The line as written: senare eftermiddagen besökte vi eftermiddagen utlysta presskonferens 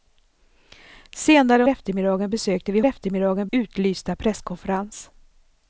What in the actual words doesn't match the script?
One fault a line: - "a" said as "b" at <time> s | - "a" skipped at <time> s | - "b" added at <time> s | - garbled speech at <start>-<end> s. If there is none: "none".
none